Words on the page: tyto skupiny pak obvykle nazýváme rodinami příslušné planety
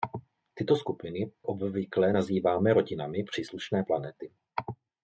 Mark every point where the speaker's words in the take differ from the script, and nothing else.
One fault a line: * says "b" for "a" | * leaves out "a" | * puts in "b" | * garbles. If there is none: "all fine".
* leaves out "pak"